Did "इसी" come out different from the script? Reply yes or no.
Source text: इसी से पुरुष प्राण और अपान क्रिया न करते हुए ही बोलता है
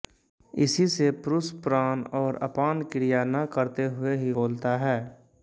no